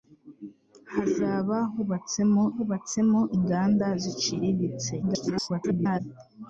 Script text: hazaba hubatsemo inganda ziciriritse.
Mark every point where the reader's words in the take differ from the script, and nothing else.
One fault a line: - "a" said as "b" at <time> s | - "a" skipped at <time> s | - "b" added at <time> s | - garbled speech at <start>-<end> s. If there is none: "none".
- "hubatsemo" added at 2.5 s
- garbled speech at 5.0-6.0 s